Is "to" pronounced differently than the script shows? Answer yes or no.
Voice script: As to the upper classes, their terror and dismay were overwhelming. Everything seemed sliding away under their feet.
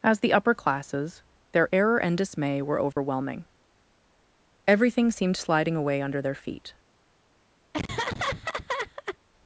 yes